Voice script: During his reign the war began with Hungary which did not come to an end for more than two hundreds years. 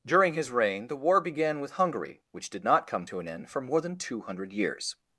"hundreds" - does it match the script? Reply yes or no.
no